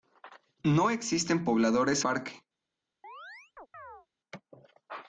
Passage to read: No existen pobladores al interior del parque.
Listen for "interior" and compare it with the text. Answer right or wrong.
wrong